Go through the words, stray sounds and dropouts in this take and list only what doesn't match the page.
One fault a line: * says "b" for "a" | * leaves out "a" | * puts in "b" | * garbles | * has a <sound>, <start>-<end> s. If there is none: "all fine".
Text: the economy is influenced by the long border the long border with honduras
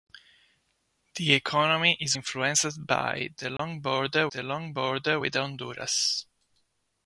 * has a dropout, 3.6-3.6 s